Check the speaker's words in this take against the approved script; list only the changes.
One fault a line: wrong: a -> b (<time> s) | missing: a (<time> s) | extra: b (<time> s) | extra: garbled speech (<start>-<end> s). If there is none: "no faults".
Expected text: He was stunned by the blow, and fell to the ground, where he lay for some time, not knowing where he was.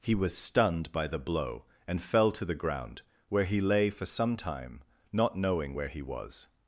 no faults